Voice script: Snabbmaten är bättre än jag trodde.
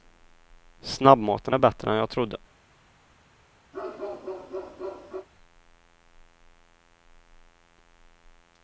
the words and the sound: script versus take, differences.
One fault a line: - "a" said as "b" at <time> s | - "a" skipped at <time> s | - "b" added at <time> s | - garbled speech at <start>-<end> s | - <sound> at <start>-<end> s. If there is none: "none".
- bark at 3.7-5.3 s